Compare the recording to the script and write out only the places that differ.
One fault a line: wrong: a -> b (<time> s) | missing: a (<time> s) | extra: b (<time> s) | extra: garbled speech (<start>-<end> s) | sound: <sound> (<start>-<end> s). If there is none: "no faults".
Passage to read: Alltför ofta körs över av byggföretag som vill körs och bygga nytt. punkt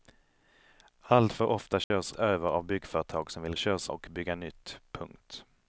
sound: dropout (1.8-1.9 s)